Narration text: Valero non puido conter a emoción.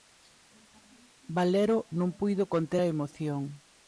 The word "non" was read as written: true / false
true